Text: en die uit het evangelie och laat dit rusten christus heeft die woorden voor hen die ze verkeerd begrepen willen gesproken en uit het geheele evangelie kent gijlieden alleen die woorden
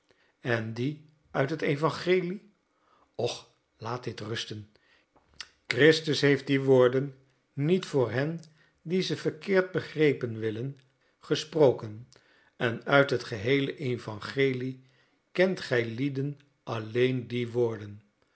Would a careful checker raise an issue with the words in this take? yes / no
yes